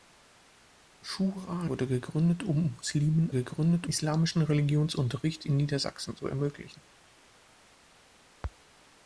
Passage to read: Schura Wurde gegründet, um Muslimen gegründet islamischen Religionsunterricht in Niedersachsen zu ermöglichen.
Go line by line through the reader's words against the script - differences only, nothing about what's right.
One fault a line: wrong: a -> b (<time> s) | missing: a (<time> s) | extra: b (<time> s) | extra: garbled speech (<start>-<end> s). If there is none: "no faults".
no faults